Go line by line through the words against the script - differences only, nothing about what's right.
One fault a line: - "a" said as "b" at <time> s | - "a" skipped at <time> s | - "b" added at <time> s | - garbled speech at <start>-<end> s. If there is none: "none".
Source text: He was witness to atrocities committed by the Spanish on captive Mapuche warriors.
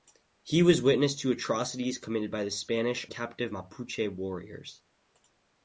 - "on" skipped at 3.1 s